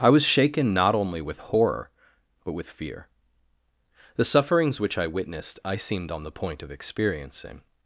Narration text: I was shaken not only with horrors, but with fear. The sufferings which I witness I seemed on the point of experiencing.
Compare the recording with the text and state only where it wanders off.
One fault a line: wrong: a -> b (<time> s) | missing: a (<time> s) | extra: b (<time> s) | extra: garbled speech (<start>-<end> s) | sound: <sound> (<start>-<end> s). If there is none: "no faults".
wrong: horrors -> horror (1.4 s)
wrong: witness -> witnessed (5.0 s)